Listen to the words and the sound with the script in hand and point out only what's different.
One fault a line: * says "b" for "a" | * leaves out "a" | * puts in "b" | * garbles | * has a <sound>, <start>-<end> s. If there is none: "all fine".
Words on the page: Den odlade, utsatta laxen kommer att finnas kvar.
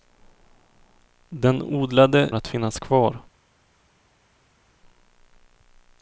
* leaves out "utsatta laxen kommer"